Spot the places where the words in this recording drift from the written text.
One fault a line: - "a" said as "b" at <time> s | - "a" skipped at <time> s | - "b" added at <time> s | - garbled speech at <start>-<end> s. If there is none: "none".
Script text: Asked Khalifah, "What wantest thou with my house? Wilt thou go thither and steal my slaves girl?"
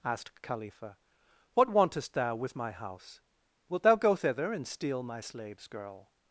none